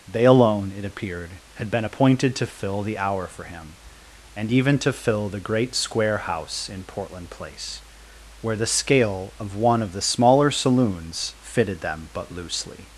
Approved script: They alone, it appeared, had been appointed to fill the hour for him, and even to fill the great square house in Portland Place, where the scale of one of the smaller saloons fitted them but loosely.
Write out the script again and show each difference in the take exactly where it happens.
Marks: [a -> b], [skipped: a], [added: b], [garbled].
They alone, it appeared, had been appointed to fill the hour for him, and even to fill the great square house in Portland Place, where the scale of one of the smaller saloons fitted them but loosely.